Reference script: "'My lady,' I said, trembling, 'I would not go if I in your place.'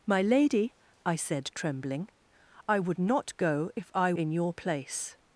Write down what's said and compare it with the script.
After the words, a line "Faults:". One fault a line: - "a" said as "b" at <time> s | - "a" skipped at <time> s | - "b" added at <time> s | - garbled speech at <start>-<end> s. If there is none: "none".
"'My lady,' I said, trembling, 'I would not go if I in your place.'
Faults:
none